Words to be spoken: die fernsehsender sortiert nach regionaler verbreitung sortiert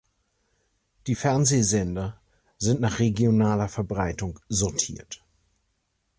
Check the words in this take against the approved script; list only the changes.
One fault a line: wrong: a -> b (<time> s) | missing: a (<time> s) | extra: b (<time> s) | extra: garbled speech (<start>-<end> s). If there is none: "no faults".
wrong: sortiert -> sind (2.6 s)